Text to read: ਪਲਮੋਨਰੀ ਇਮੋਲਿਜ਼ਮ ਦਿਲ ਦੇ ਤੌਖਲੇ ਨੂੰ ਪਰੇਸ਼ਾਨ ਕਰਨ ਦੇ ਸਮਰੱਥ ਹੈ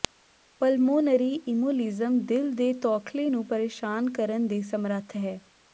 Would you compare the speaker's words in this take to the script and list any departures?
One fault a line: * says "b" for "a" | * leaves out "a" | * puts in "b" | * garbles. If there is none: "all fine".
all fine